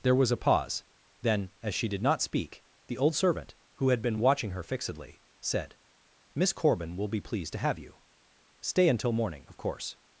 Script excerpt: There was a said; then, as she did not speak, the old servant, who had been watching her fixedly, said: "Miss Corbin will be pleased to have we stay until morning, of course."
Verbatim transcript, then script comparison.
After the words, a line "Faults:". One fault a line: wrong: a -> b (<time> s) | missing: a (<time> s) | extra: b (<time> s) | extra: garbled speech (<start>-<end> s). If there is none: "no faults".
There was a pause; then, as she did not speak, the old servant, who had been watching her fixedly, said: "Miss Corbin will be pleased to have you stay until morning, of course."
Faults:
wrong: said -> pause (0.4 s)
wrong: we -> you (7.8 s)